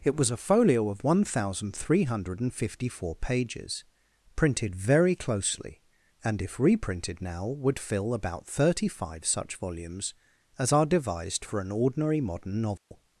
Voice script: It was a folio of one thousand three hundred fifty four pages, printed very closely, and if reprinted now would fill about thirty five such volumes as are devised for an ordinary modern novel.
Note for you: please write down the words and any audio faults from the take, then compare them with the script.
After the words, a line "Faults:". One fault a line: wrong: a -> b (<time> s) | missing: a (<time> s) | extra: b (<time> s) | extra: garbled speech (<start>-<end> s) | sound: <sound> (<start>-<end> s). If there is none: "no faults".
It was a folio of one thousand three hundred fifty four pages, printed very closely, and if reprinted now would fill about thirty five such volumes as are devised for an ordinary modern novel.
Faults:
sound: dropout (12.8-12.9 s)